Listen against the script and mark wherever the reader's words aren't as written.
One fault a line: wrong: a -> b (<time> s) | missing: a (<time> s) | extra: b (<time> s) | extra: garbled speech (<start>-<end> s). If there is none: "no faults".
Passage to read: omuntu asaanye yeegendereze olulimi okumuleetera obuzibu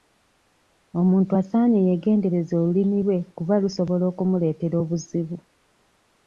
extra: lwe kuba lusobola (3.1 s)